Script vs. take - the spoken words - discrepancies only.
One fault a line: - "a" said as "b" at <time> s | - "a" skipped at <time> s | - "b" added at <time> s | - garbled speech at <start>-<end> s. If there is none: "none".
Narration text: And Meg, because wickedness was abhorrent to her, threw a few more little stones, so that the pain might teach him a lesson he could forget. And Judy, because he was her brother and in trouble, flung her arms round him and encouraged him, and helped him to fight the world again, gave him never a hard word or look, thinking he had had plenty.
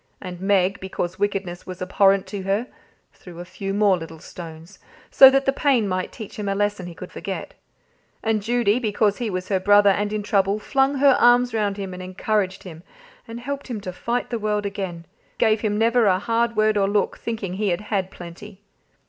none